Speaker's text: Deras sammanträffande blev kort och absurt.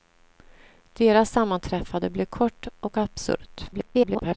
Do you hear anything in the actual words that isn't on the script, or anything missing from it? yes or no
yes